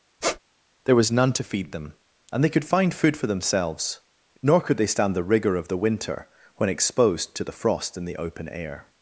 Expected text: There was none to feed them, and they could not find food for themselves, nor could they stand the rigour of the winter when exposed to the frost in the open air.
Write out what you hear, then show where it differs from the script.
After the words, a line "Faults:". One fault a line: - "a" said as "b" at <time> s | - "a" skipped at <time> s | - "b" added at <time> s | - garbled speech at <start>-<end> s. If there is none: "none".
There was none to feed them, and they could find food for themselves, nor could they stand the rigour of the winter when exposed to the frost in the open air.
Faults:
- "not" skipped at 2.6 s